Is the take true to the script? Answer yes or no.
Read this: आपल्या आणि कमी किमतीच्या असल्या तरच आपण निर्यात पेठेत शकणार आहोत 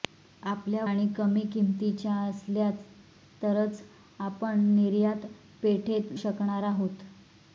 yes